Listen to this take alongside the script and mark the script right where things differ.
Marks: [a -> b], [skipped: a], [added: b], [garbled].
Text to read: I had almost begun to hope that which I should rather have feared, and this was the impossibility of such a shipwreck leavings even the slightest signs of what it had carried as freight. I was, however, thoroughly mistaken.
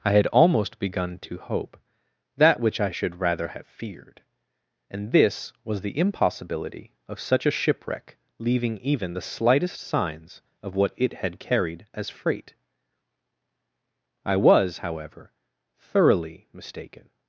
I had almost begun to hope that which I should rather have feared, and this was the impossibility of such a shipwreck [leavings -> leaving] even the slightest signs of what it had carried as freight. I was, however, thoroughly mistaken.